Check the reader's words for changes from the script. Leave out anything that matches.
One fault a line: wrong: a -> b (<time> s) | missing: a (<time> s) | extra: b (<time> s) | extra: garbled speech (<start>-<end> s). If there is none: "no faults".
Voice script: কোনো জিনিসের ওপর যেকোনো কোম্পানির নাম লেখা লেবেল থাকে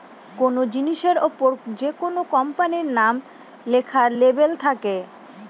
no faults